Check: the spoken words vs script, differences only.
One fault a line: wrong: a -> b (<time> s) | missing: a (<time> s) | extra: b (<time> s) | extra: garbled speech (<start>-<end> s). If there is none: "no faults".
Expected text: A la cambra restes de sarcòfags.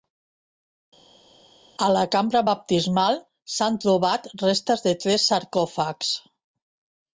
extra: baptismal s'han trobat (2.5 s)
extra: tres (5.1 s)